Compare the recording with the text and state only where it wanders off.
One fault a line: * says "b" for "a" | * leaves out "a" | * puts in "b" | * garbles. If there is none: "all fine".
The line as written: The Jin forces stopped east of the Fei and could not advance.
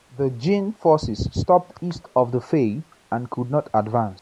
all fine